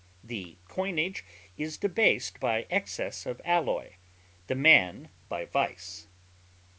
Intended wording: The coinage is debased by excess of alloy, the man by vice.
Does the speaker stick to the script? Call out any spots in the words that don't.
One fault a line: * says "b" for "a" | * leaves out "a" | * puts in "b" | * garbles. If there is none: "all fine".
all fine